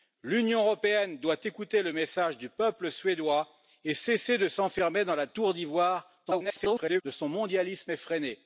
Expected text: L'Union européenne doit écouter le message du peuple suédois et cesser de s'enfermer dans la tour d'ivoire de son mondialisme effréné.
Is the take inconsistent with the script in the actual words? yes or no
yes